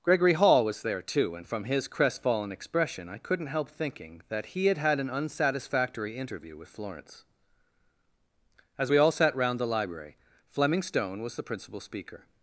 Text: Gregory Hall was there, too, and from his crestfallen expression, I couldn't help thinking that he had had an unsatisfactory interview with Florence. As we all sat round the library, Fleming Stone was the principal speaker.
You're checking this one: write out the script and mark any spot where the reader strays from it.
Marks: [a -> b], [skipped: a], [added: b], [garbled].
Gregory Hall was there, too, and from his crestfallen expression, I couldn't help thinking that he had had an unsatisfactory interview with Florence. As we all sat round the library, Fleming Stone was the principal speaker.